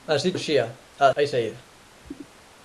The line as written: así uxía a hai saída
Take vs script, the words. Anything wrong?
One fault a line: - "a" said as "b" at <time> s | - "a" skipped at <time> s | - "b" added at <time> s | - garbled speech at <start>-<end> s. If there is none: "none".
none